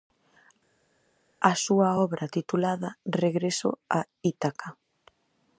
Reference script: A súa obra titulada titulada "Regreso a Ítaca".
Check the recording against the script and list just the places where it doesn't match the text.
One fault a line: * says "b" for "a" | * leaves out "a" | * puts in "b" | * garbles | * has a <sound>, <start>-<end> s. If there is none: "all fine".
* leaves out "titulada"